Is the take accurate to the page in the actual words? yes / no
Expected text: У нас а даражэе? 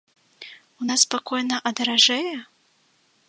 no